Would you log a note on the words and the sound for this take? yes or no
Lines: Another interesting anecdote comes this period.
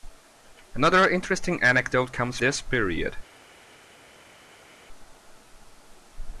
no